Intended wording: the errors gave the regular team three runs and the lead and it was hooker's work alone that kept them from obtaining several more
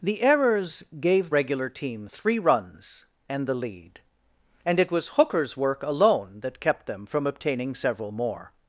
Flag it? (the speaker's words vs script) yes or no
yes